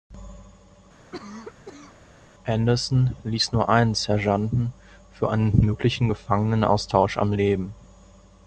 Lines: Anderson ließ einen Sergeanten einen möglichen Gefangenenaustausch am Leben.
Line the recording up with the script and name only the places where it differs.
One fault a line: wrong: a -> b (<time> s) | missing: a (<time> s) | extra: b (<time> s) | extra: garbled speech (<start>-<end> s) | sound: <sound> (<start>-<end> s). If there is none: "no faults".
sound: cough (1.1-2.0 s)
extra: nur (3.5 s)
extra: für (5.1 s)